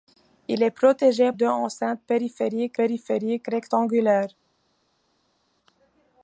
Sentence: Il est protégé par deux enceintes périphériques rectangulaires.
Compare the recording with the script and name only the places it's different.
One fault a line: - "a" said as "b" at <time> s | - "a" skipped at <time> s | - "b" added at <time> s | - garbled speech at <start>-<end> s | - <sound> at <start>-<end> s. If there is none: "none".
- "par" skipped at 1.3 s
- "périphériques" added at 2.7 s